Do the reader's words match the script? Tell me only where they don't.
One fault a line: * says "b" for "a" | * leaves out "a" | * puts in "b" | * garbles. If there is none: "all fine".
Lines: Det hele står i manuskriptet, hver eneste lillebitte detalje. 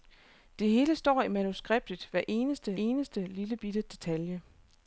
* puts in "eneste"